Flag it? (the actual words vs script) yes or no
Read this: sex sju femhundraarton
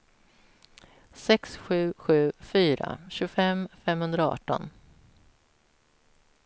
yes